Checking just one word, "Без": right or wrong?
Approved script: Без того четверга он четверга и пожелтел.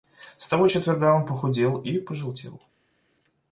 wrong